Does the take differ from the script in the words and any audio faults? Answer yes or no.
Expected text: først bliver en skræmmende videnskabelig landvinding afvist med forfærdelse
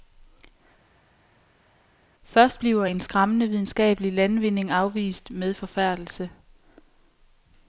no